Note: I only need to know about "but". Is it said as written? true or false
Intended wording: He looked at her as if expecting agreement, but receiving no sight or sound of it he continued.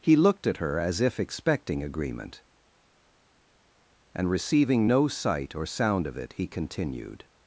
false